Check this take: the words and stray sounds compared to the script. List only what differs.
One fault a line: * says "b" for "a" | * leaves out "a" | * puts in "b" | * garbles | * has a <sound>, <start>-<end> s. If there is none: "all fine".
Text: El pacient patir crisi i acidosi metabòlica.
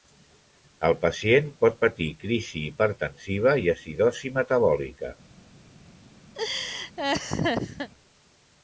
* puts in "pot"
* puts in "hipertensiva"
* has a laugh, 6.3-7.9 s